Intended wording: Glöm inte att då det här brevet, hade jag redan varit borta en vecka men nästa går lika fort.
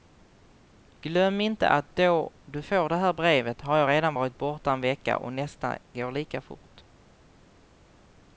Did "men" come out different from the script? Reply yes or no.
yes